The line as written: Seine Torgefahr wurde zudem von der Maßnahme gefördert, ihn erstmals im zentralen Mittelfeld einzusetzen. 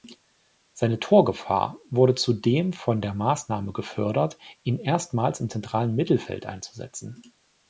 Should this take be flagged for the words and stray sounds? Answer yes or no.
no